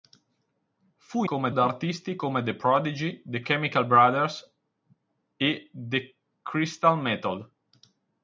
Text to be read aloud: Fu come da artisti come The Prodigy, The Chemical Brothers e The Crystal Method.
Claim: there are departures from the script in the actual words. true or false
false